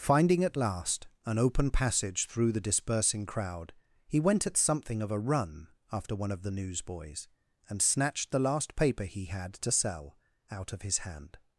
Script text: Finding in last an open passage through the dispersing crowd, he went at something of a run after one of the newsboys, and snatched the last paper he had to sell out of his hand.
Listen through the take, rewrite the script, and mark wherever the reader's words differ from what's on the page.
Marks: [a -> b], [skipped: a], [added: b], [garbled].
Finding [in -> at] last an open passage through the dispersing crowd, he went at something of a run after one of the newsboys, and snatched the last paper he had to sell out of his hand.